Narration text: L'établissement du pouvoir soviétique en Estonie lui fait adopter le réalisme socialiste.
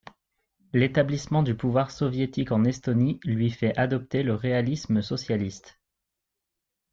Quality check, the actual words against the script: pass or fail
pass